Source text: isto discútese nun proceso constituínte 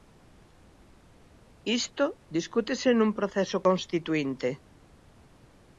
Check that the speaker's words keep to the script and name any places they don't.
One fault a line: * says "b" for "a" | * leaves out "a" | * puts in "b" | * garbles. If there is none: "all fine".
all fine